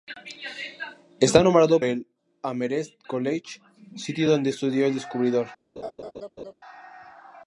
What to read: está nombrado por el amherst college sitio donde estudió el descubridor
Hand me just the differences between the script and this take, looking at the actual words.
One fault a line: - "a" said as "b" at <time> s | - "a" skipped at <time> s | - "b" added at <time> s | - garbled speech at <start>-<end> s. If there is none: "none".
- "por" skipped at 1.8 s